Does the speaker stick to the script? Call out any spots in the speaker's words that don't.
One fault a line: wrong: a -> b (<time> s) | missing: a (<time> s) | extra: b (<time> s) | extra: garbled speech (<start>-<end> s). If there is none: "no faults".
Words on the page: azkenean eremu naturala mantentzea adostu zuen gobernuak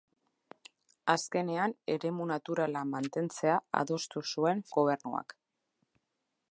no faults